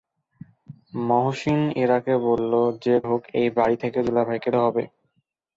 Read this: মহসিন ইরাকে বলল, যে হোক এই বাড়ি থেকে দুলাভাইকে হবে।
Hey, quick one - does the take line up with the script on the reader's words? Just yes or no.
yes